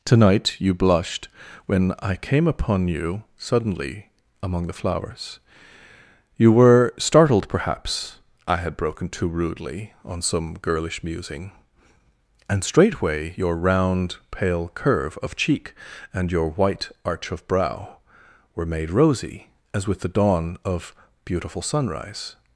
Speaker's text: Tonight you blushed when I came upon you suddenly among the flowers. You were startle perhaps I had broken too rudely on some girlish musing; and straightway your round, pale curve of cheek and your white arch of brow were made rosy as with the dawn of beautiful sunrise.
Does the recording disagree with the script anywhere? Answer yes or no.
yes